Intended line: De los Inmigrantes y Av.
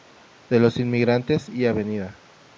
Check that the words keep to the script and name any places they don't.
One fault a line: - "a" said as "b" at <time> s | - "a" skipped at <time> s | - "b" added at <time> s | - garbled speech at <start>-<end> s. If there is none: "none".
none